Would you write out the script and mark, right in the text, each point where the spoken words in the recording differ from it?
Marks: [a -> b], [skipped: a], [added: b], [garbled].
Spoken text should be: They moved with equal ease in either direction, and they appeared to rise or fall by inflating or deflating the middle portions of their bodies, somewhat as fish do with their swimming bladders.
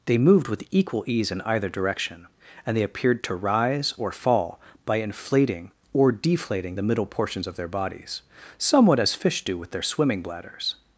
They moved with equal ease in either direction, and they appeared to rise or fall by inflating or deflating the middle portions of their bodies, somewhat as fish do with their swimming bladders.